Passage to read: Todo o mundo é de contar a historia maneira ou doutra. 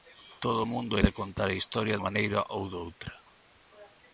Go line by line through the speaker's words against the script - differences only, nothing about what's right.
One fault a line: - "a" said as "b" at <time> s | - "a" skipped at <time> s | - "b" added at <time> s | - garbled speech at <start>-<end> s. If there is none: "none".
none